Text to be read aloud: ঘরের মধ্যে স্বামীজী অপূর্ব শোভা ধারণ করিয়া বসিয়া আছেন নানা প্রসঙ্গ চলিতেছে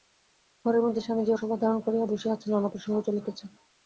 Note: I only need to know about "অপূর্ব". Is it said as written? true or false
false